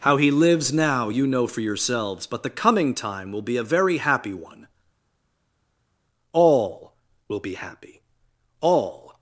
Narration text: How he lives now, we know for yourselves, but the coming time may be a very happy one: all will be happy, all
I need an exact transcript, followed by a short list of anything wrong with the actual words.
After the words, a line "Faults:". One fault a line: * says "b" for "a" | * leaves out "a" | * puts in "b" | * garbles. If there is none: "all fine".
How he lives now, you know for yourselves, but the coming time will be a very happy one: all will be happy, all
Faults:
* says "you" for "we"
* says "will" for "may"